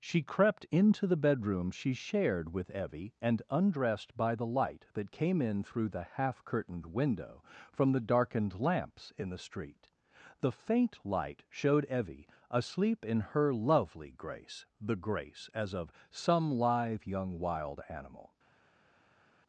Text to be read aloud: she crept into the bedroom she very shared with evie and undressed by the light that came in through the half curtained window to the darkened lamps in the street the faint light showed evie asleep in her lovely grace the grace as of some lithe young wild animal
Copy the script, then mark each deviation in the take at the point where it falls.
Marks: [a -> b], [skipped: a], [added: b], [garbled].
she crept into the bedroom she [skipped: very] shared with evie and undressed by the light that came in through the half curtained window [to -> from] the darkened lamps in the street the faint light showed evie asleep in her lovely grace the grace as of some lithe young wild animal